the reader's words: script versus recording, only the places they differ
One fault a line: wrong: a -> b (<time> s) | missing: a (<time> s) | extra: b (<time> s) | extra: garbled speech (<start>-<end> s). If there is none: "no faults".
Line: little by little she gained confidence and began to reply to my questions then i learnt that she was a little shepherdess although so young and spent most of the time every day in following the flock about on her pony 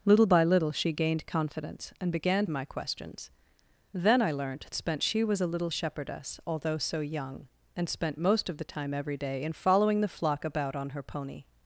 missing: to reply to (2.5 s)
wrong: that -> spent (4.7 s)